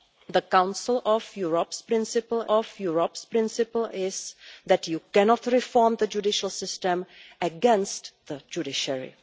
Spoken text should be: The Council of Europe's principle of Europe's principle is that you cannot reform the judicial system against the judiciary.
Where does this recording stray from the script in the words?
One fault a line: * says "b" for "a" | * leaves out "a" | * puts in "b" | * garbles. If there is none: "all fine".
all fine